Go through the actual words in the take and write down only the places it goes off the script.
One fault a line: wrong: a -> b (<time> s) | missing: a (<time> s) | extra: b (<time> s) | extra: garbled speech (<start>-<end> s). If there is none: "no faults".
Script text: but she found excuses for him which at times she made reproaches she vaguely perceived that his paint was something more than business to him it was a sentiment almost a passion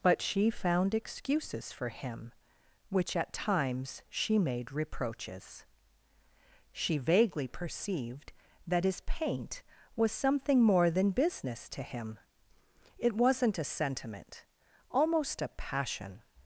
wrong: was -> wasn't (13.2 s)